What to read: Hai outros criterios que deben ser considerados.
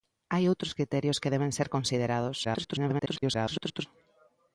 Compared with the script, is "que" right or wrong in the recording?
right